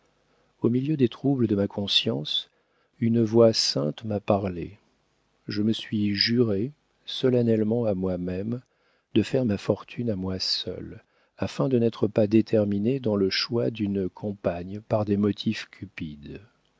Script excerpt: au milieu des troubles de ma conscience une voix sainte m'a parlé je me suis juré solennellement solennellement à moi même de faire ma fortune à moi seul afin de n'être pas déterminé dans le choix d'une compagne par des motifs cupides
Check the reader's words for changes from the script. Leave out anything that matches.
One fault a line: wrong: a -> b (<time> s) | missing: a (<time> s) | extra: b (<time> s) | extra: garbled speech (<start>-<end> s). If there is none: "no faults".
missing: solennellement (7.8 s)